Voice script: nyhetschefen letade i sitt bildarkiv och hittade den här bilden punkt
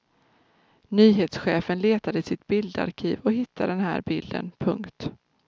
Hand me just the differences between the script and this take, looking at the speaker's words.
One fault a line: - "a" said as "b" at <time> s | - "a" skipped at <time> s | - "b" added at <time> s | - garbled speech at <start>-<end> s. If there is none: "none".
none